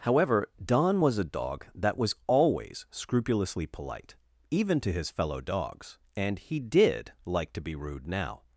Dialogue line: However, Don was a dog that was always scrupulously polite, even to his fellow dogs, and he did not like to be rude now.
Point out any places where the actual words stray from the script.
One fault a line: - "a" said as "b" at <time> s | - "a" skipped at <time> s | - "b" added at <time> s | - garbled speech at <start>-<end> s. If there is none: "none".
- "not" skipped at 7.1 s